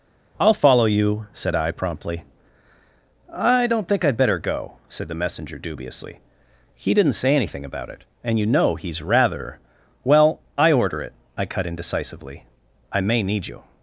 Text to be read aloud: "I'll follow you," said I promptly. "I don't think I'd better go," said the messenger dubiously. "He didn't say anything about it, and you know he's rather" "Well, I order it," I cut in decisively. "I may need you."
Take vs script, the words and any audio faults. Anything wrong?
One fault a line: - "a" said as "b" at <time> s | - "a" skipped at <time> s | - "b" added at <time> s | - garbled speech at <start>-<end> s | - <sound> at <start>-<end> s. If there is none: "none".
none